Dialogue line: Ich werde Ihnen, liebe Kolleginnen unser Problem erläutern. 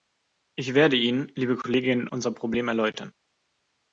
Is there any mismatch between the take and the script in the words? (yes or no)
no